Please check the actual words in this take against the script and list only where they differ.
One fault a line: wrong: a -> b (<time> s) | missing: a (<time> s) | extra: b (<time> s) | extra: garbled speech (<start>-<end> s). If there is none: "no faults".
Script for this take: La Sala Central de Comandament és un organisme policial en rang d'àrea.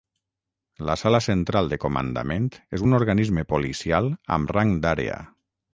wrong: en -> amb (4.4 s)